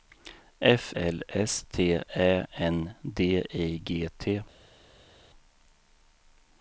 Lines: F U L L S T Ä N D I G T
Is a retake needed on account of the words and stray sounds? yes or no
yes